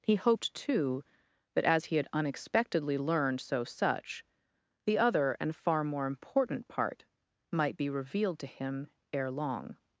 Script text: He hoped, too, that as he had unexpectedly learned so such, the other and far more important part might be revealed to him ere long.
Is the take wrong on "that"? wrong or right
right